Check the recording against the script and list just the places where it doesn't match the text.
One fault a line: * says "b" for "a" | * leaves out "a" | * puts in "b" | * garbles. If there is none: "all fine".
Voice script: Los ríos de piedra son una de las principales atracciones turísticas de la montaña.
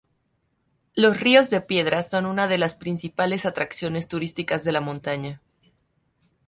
all fine